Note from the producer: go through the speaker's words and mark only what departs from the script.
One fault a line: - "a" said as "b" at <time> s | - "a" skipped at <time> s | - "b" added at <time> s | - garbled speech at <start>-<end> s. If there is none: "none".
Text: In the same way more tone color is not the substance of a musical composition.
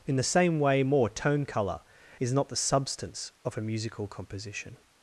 none